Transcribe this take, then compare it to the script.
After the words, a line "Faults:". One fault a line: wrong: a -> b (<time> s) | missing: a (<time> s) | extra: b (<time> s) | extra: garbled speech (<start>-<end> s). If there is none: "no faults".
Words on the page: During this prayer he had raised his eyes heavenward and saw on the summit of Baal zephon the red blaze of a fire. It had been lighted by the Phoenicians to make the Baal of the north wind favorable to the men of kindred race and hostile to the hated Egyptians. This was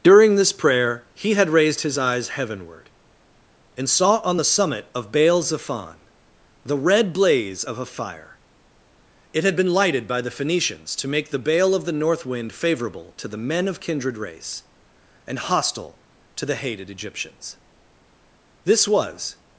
During this prayer he had raised his eyes heavenward and saw on the summit of Baal zephon the red blaze of a fire. It had been lighted by the Phoenicians to make the Baal of the north wind favorable to the men of kindred race and hostile to the hated Egyptians. This was
Faults:
no faults